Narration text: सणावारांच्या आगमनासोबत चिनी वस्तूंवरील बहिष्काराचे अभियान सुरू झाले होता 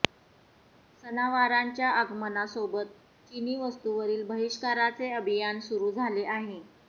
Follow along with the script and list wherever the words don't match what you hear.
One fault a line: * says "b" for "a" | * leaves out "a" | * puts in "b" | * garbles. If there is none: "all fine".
* says "आहे" for "होता"